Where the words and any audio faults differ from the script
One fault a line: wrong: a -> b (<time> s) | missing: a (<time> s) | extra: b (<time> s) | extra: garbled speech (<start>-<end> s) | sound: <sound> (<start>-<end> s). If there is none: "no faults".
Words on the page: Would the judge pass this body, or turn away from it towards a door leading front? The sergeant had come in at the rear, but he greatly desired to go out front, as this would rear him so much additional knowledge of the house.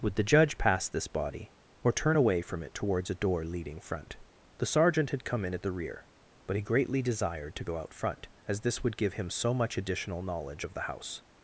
wrong: rear -> give (9.0 s)